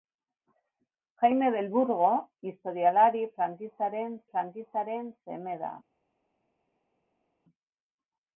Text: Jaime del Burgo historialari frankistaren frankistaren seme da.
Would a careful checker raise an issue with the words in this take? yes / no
no